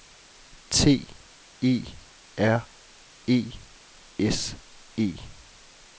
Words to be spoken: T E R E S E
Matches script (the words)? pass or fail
pass